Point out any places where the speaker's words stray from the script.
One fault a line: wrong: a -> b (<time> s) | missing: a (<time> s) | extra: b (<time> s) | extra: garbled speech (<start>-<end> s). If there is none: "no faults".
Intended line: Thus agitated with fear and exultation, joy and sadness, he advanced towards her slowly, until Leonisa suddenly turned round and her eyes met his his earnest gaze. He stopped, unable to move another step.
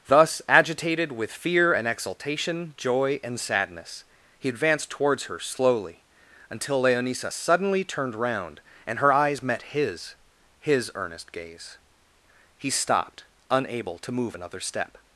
no faults